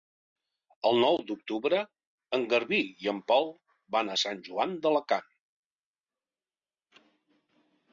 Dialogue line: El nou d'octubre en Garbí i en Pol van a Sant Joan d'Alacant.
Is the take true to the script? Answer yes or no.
yes